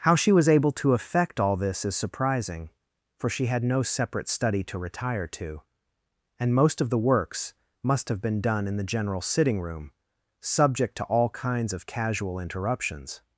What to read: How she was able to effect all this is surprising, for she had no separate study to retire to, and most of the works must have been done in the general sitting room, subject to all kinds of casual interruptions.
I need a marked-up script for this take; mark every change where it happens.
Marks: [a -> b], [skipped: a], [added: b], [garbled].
How she was able to effect all this is surprising, for she had no separate study to retire to, and most of the works must have been done in the general sitting room, subject to all kinds of casual interruptions.